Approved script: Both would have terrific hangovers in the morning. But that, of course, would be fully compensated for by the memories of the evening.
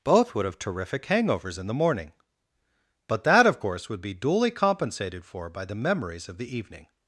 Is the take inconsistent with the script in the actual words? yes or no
yes